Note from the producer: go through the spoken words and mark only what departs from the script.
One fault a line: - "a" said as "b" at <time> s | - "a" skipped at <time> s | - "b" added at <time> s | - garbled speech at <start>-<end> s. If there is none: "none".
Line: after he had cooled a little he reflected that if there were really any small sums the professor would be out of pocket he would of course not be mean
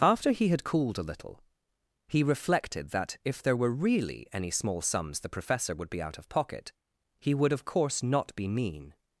none